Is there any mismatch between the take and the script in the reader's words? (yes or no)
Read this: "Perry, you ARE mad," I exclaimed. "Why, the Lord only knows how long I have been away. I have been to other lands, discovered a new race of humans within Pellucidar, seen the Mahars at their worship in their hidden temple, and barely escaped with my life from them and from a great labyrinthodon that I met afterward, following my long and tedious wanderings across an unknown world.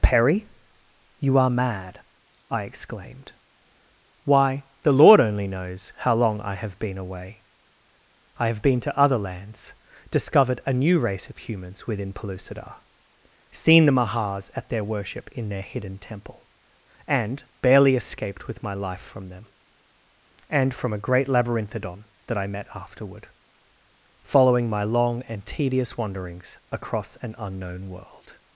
no